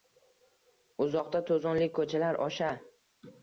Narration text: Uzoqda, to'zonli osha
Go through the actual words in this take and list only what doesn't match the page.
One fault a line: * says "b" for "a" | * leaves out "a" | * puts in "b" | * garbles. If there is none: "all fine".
* puts in "ko'chalar"